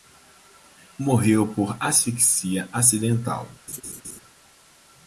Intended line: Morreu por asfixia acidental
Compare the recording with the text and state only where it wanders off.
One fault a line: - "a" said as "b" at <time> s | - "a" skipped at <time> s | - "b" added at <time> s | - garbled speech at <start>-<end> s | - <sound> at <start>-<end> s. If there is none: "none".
- laugh at 3.7-4.2 s